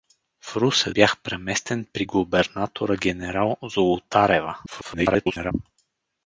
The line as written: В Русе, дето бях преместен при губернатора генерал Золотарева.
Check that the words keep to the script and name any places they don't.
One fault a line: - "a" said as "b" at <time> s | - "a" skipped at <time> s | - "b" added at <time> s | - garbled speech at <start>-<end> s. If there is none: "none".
- "дето" skipped at 0.9 s
- garbled speech at 4.7-5.5 s